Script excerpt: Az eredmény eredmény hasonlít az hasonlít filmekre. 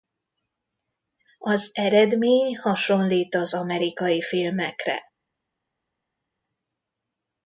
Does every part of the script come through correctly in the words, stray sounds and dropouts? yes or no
no